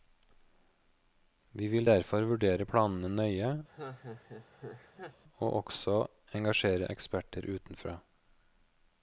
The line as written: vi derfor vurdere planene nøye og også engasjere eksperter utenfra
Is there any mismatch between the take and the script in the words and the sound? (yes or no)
yes